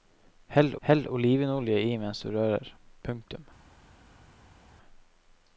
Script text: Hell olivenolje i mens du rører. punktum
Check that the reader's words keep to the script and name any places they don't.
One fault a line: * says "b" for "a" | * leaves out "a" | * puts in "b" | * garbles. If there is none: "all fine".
* puts in "hell"